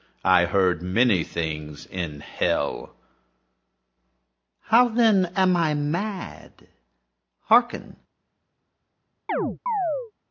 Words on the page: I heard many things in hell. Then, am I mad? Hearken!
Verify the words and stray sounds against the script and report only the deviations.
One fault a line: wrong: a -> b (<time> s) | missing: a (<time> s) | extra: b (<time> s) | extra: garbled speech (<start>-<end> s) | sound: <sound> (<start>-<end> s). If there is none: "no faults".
extra: How (4.6 s)
sound: chirp (9.3-10.1 s)